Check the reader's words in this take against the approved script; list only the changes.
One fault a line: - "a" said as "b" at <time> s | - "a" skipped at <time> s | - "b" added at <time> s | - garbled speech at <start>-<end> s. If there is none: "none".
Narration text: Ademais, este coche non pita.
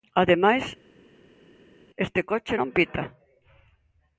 none